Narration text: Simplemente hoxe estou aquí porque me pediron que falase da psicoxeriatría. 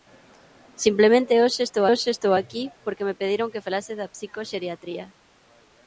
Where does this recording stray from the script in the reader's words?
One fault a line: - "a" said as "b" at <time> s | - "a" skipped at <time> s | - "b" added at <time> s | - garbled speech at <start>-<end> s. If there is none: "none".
- "hoxe estou" added at 1.9 s